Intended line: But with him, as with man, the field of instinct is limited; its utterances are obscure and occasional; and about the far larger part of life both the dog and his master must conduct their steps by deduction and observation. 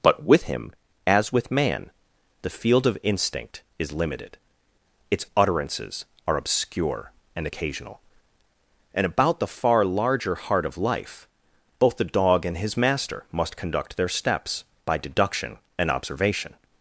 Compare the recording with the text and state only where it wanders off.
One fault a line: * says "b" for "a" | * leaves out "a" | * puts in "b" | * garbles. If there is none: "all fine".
* says "heart" for "part"